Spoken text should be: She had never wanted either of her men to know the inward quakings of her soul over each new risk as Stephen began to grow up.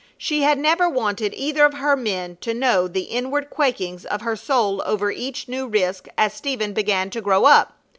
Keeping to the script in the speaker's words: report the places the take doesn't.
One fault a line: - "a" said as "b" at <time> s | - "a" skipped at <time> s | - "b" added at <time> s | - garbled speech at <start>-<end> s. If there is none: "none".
none